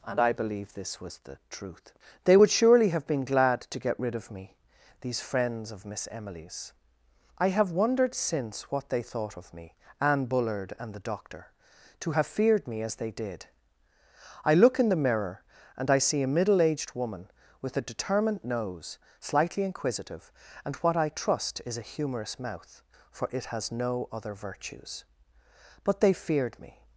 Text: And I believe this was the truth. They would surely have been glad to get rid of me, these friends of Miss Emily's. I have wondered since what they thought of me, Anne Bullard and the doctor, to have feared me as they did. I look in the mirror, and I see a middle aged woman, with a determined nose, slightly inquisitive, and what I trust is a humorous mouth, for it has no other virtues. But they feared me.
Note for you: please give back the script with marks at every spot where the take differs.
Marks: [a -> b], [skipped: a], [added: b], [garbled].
And I believe this was the truth. They would surely have been glad to get rid of me, these friends of Miss Emily's. I have wondered since what they thought of me, Anne Bullard and the doctor, to have feared me as they did. I look in the mirror, and I see a middle aged woman, with a determined nose, slightly inquisitive, and what I trust is a humorous mouth, for it has no other virtues. But they feared me.